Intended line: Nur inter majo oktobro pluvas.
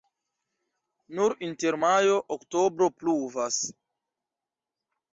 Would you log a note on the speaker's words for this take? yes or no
no